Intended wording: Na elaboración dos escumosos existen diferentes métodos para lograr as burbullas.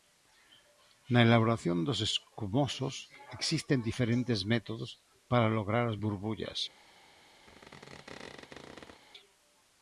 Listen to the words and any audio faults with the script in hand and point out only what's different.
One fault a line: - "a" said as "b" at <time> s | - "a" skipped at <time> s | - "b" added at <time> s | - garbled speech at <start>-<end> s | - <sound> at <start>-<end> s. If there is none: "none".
- squeak at 7.5-9.0 s